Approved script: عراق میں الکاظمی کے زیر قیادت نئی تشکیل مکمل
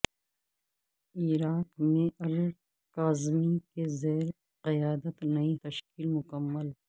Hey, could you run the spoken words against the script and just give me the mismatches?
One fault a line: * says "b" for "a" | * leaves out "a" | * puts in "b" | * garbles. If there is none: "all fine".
all fine